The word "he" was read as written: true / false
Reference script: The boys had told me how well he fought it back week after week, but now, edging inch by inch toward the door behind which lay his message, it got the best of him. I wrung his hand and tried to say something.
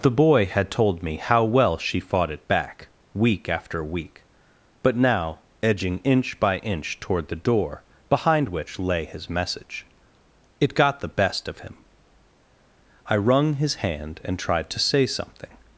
false